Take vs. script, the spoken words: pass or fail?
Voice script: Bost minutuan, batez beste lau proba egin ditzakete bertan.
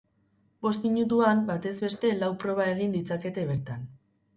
pass